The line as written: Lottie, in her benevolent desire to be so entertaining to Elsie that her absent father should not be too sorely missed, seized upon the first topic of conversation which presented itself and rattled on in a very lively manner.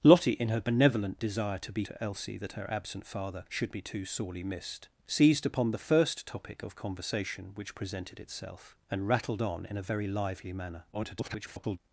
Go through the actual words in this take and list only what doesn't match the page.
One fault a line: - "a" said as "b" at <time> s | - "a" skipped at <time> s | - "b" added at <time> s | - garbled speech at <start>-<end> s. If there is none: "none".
- "so entertaining" skipped at 1.9 s
- "not" skipped at 3.7 s
- garbled speech at 10.9-11.8 s